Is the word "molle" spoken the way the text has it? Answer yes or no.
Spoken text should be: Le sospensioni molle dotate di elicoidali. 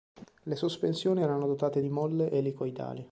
no